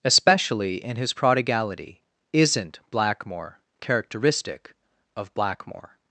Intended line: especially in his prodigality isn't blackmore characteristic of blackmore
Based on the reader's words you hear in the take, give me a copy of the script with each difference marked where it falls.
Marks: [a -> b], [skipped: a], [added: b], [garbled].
especially in his prodigality isn't blackmore characteristic of blackmore